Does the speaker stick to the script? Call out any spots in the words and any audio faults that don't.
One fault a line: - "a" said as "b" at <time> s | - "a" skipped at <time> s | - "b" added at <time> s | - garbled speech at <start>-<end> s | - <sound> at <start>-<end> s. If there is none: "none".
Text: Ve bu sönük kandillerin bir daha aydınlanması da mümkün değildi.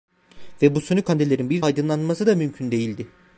- "daha" skipped at 1.6 s